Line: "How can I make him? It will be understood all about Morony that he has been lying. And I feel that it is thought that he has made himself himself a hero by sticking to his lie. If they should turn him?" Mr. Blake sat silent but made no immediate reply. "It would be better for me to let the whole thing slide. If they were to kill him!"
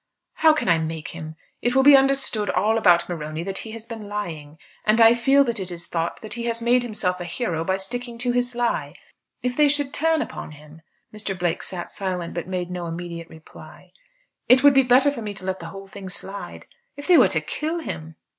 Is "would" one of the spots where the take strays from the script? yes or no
no